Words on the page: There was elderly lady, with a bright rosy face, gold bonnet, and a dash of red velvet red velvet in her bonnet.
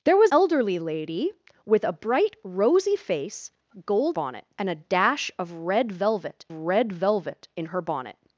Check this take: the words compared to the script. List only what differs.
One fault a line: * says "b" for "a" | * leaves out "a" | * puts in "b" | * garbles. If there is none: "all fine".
all fine